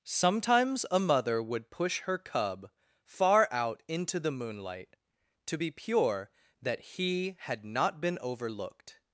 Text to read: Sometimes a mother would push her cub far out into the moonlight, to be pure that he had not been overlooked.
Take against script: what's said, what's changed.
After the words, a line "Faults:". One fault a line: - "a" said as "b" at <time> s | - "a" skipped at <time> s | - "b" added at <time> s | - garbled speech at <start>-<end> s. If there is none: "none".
Sometimes a mother would push her cub far out into the moonlight, to be pure that he had not been overlooked.
Faults:
none